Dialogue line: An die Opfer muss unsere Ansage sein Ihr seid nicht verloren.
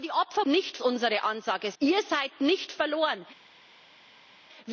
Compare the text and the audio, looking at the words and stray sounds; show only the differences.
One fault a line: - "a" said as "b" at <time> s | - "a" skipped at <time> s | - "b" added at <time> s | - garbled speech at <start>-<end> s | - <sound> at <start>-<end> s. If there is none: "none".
- "muss" said as "nicht" at 0.4 s
- "sein" skipped at 1.7 s